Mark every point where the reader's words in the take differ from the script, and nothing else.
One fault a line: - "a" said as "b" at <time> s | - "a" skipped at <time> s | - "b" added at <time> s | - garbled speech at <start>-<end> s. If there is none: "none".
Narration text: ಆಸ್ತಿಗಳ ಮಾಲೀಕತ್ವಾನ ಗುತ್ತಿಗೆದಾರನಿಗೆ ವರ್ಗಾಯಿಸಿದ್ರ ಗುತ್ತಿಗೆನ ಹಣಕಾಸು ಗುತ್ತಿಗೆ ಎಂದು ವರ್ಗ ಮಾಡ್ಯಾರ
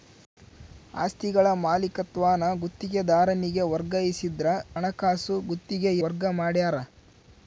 - "ಗುತ್ತಿಗೆನ" skipped at 4.5 s
- "ಎಂದು" skipped at 5.9 s